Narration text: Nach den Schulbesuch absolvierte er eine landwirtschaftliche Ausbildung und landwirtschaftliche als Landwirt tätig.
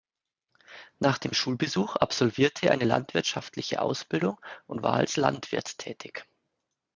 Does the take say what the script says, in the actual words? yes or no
no